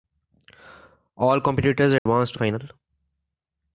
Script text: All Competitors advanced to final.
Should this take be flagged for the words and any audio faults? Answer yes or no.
yes